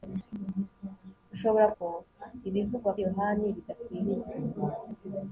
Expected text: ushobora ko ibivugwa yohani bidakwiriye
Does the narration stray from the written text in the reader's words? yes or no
no